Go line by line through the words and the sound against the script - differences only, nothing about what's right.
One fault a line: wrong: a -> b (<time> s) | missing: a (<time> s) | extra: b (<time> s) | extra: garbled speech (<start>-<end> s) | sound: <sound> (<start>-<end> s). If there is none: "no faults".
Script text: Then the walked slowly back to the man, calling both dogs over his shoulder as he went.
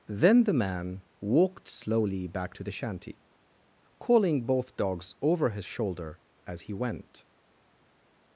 extra: man (0.5 s)
wrong: man -> shanty (2.7 s)